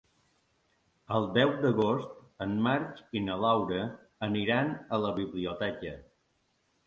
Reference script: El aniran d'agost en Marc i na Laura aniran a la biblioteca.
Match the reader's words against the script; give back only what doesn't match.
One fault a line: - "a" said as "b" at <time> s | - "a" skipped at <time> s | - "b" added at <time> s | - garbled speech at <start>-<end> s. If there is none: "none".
- "aniran" said as "deu" at 1.3 s